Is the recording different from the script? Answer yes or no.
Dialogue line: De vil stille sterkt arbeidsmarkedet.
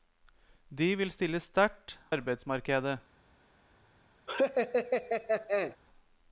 no